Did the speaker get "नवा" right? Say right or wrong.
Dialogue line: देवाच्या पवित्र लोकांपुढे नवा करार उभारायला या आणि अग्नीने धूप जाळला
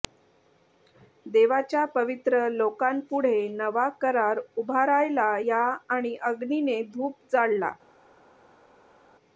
right